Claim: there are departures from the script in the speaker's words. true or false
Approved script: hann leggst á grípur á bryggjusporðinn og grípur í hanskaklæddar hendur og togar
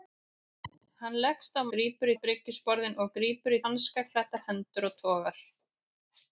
false